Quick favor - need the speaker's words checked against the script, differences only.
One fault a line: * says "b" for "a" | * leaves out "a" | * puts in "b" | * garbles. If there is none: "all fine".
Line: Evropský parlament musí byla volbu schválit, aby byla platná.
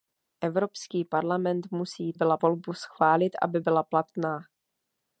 all fine